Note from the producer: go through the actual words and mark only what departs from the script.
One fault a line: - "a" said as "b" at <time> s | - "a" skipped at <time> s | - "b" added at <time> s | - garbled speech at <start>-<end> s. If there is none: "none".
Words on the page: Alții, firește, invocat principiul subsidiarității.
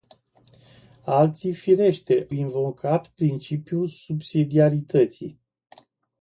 none